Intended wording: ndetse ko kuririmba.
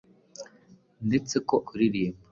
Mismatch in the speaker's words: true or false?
false